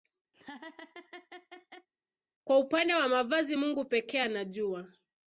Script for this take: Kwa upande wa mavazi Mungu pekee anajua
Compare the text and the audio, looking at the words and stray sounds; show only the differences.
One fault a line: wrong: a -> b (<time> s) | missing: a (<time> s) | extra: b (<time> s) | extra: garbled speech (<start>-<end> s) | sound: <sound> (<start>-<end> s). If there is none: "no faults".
sound: laugh (0.3-1.9 s)